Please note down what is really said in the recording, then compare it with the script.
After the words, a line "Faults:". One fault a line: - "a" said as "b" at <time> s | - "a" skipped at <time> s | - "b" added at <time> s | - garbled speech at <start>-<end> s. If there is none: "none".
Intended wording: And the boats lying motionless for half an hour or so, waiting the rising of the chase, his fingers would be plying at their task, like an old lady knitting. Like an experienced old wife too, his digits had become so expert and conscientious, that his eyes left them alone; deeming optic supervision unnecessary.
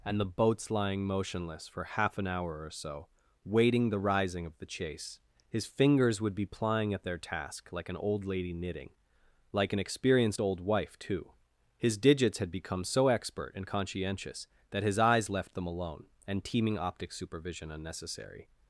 And the boats lying motionless for half an hour or so, waiting the rising of the chase, his fingers would be plying at their task, like an old lady knitting. Like an experienced old wife too, his digits had become so expert and conscientious, that his eyes left them alone; and teeming optic supervision unnecessary.
Faults:
- "deeming" said as "and teeming" at 16.3 s